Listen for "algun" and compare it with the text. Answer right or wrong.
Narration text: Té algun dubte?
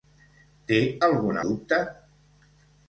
right